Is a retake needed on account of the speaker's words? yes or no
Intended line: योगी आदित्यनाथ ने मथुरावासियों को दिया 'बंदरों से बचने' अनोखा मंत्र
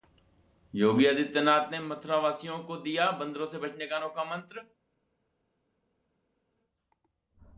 yes